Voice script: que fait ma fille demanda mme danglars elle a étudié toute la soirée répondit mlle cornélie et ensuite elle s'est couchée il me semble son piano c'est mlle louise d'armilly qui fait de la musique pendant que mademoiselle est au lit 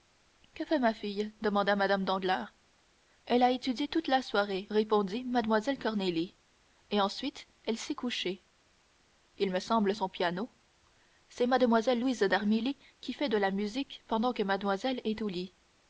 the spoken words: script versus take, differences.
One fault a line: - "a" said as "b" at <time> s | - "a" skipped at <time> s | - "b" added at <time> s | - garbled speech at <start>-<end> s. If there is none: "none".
none